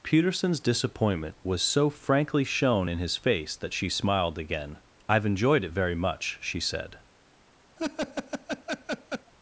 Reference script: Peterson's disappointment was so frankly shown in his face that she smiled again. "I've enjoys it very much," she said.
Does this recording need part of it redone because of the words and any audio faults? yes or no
yes